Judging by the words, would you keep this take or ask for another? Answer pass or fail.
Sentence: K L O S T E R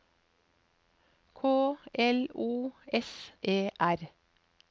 fail